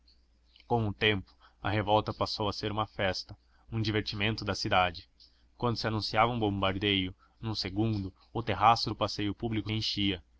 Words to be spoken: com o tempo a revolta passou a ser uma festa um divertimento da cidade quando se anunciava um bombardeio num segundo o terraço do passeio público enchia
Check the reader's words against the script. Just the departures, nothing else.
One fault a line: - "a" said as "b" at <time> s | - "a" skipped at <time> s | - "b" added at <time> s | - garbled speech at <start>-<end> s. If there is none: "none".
none